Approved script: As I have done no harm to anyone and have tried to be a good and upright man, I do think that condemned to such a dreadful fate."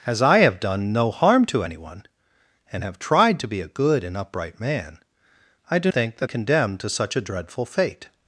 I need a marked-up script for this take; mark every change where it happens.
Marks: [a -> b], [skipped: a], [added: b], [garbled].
As I have done no harm to anyone and have tried to be a good and upright man, I do think that condemned to such a dreadful fate."